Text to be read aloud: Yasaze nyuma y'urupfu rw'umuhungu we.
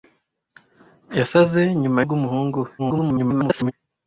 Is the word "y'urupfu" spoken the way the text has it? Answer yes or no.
no